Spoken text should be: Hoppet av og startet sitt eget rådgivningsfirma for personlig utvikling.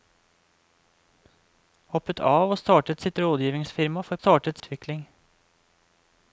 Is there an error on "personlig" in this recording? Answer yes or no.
yes